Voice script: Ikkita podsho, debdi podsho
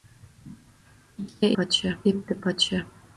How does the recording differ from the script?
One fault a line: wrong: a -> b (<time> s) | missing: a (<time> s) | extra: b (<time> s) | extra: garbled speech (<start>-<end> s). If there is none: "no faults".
no faults